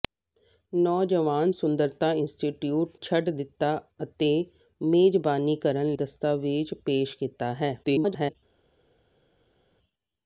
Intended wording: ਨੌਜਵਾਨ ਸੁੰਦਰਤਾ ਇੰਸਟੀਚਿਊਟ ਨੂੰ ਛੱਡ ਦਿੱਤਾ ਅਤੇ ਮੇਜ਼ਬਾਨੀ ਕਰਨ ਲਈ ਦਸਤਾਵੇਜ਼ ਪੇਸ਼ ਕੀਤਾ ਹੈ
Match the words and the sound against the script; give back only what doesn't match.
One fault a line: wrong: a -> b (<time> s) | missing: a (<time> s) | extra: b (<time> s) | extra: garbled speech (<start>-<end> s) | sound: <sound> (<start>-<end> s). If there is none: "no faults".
missing: ਨੂੰ (3.0 s)
missing: ਲਈ (5.9 s)
extra: garbled speech (7.8-8.4 s)